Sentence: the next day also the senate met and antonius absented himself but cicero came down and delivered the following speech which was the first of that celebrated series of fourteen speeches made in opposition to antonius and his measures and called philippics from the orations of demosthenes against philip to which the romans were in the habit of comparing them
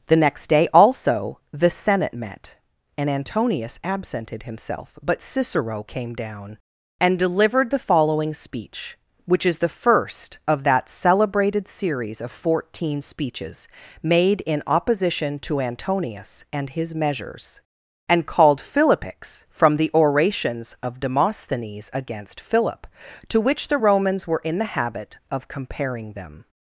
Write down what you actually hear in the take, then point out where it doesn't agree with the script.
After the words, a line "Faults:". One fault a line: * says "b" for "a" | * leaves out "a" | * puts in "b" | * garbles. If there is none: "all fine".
the next day also the senate met and antonius absented himself but cicero came down and delivered the following speech which is the first of that celebrated series of fourteen speeches made in opposition to antonius and his measures and called philippics from the orations of demosthenes against philip to which the romans were in the habit of comparing them
Faults:
* says "is" for "was"